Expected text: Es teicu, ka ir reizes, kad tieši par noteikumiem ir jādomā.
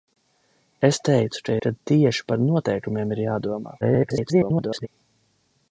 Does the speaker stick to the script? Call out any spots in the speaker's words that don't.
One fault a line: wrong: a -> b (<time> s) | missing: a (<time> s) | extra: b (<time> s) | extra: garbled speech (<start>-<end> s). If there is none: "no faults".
missing: ir reizes (1.6 s)
extra: garbled speech (3.8-4.9 s)